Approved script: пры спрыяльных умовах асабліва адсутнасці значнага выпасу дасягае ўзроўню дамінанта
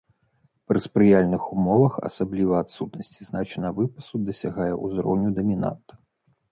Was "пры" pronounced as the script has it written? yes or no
yes